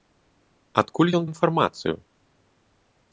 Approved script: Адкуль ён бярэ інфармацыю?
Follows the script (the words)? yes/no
no